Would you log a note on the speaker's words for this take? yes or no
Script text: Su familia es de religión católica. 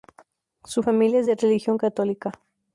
no